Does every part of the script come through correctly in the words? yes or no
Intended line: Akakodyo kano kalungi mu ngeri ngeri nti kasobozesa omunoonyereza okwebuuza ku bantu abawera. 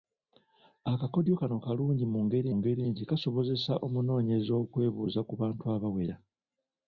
yes